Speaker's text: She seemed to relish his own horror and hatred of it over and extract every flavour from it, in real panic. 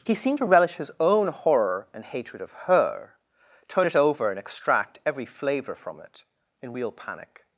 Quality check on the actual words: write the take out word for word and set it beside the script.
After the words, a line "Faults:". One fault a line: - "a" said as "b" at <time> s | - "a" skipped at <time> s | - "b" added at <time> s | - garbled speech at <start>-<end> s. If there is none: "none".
He seemed to relish his own horror and hatred of her, turn it over and extract every flavour from it, in real panic.
Faults:
- "She" said as "He" at 0.0 s
- "her turn" added at 2.5 s